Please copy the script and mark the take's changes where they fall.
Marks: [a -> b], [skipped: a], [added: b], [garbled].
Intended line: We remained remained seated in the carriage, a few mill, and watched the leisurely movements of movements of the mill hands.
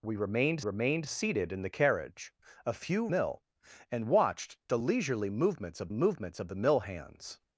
We remained remained seated in the carriage, a few mill, and watched the leisurely movements of movements of the mill hands.